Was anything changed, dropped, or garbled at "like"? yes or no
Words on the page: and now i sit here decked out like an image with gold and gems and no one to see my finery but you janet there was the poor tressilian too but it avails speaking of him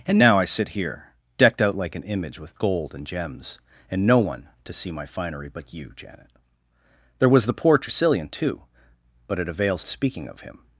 no